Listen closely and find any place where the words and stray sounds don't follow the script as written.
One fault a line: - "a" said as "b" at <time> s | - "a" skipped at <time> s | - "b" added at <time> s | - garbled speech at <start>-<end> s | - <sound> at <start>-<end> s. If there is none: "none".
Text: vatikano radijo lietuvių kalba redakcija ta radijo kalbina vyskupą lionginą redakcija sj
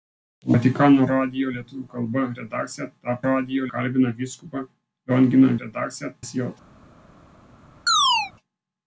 - chirp at 7.9-8.3 s